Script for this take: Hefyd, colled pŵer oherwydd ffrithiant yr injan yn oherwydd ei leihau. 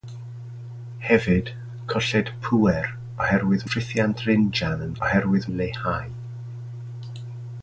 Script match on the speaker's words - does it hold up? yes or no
yes